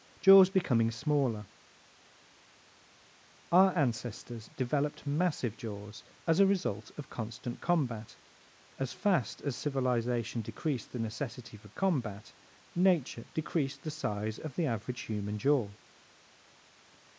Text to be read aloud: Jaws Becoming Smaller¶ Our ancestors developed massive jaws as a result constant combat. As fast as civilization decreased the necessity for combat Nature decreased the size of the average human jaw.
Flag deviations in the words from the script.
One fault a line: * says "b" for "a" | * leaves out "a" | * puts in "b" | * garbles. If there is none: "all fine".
* puts in "of"